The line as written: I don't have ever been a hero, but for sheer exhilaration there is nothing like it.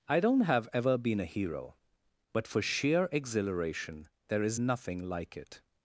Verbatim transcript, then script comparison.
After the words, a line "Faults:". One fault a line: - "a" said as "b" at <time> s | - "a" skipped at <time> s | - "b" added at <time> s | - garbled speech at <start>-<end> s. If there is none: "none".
I don't have ever been a hero, but for sheer exhilaration there is nothing like it.
Faults:
none